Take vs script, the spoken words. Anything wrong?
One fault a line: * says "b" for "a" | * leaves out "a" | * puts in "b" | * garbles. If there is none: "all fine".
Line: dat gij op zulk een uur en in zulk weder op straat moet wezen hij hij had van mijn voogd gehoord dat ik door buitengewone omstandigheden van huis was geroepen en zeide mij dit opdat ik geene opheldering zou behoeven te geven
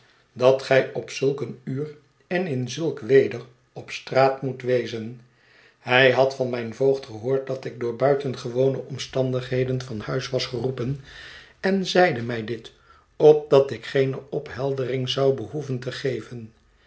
* leaves out "hij"